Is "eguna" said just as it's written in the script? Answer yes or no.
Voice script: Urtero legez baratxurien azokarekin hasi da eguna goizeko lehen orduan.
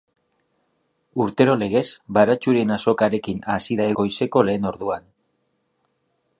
no